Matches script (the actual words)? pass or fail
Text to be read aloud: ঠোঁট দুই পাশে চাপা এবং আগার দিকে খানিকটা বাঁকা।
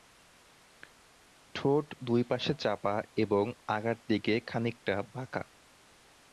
pass